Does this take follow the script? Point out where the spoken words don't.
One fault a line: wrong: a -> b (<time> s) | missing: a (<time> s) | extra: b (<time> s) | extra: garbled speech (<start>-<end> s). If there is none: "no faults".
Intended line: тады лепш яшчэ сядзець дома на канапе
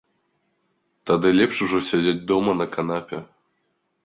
wrong: яшчэ -> ужо (1.7 s)